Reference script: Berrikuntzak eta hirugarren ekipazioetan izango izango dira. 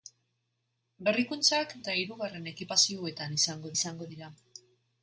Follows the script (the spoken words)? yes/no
yes